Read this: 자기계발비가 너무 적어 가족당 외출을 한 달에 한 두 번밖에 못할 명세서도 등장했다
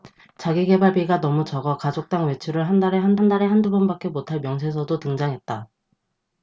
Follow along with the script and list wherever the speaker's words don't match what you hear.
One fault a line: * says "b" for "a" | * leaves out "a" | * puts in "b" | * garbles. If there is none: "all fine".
* puts in "한 달에 한"